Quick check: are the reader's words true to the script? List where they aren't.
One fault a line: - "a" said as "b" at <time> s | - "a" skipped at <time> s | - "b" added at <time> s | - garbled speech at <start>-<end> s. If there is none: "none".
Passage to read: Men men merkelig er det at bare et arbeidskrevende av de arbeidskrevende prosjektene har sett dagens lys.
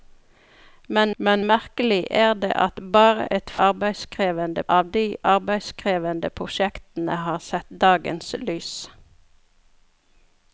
none